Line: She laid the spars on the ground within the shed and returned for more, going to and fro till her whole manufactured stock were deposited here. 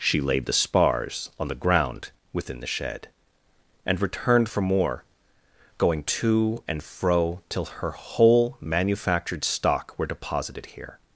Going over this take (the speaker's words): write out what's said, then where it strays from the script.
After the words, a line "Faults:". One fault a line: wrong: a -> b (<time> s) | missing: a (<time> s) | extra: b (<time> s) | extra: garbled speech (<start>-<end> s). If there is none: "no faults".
She laid the spars on the ground within the shed and returned for more, going to and fro till her whole manufactured stock were deposited here.
Faults:
no faults